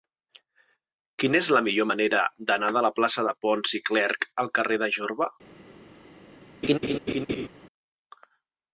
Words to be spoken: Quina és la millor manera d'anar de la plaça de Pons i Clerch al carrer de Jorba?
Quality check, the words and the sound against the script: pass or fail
fail